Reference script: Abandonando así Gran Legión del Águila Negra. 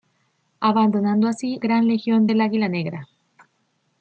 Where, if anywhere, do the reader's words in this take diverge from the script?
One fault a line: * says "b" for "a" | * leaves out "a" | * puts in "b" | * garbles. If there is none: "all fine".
all fine